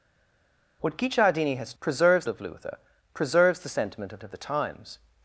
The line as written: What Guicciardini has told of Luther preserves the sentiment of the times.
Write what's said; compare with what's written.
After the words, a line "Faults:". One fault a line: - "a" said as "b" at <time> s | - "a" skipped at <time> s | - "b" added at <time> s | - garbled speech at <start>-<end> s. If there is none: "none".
What Guicciardini has preserves of Luther preserves the sentiment of of the times.
Faults:
- "told" said as "preserves" at 1.8 s
- "of" added at 4.2 s